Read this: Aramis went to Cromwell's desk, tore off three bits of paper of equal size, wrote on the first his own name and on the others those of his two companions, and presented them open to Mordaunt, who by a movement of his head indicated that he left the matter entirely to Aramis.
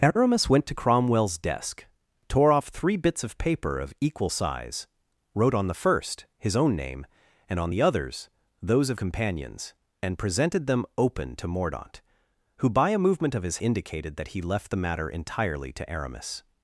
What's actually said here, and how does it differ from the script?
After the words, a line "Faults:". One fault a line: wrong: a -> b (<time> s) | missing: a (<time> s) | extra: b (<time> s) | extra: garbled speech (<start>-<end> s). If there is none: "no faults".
Aramis went to Cromwell's desk, tore off three bits of paper of equal size, wrote on the first his own name and on the others those of companions, and presented them open to Mordaunt, who by a movement of his indicated that he left the matter entirely to Aramis.
Faults:
missing: his two (9.0 s)
missing: head (13.6 s)